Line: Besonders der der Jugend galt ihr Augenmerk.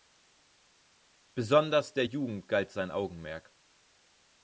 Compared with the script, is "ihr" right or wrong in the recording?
wrong